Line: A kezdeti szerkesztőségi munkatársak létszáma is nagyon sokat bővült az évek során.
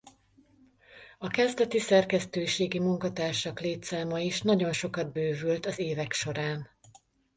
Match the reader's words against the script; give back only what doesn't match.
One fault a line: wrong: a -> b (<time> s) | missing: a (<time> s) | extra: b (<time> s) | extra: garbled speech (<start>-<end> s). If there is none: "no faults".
no faults